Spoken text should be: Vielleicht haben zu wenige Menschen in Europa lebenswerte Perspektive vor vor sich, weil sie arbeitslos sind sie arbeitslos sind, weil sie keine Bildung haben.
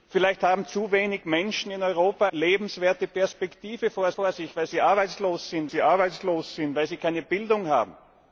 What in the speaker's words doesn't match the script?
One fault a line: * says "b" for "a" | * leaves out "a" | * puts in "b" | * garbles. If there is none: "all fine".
all fine